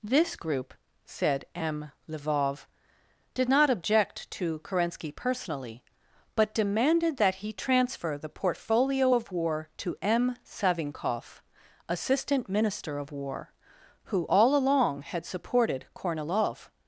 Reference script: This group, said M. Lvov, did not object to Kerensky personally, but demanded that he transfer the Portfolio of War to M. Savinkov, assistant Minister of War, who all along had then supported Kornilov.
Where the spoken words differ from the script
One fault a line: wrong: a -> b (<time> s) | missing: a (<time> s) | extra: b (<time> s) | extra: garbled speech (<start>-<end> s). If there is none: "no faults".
missing: then (15.3 s)